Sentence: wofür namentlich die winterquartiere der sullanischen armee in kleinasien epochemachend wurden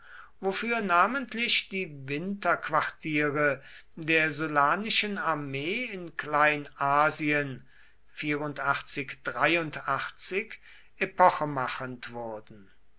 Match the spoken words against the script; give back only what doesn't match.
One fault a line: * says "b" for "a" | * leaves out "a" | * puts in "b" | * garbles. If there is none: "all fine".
all fine